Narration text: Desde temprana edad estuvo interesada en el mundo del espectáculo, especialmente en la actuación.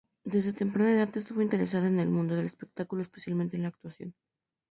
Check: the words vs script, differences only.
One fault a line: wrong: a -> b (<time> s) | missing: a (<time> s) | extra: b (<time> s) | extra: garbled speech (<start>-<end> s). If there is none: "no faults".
no faults